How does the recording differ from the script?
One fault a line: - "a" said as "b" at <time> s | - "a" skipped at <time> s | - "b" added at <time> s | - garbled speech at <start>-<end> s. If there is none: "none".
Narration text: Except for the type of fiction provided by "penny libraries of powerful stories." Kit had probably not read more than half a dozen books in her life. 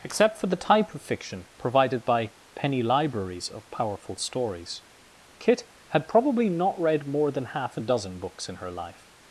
none